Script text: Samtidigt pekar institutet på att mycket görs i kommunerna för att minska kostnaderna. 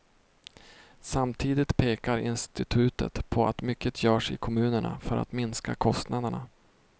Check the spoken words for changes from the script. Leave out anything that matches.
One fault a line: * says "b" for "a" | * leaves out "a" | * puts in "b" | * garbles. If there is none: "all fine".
all fine